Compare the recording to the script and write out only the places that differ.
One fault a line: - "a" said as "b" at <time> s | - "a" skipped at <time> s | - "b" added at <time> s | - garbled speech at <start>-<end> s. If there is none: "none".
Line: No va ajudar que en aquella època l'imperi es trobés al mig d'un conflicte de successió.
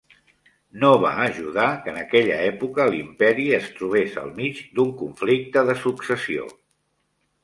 none